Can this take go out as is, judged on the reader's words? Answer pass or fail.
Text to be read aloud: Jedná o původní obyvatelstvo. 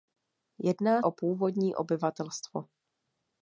pass